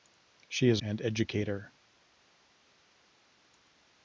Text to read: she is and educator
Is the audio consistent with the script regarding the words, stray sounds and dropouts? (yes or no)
yes